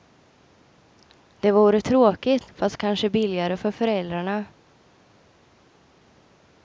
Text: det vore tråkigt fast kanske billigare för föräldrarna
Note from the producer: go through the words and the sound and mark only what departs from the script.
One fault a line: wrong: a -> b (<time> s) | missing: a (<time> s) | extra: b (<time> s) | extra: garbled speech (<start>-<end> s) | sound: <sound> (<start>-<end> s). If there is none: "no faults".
no faults